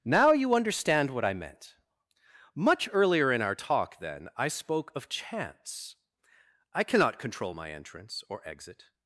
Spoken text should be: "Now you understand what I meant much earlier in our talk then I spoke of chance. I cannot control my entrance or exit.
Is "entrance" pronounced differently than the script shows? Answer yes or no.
no